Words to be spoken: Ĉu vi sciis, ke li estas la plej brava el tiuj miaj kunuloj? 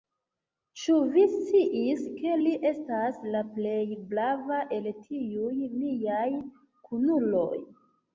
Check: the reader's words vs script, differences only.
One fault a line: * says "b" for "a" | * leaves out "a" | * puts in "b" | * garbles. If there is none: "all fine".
all fine